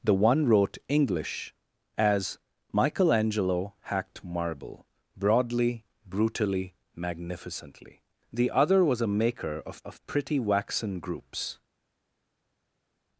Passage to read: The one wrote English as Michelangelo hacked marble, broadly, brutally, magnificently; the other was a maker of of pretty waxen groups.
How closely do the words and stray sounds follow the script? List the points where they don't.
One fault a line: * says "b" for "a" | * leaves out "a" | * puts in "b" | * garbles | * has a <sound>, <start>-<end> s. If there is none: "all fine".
all fine